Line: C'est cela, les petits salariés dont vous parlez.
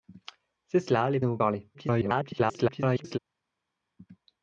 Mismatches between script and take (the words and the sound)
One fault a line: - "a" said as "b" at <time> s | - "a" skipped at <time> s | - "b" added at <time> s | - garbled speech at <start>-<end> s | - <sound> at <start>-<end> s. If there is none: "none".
- "petits salariés" skipped at 1.2 s
- garbled speech at 1.7-3.2 s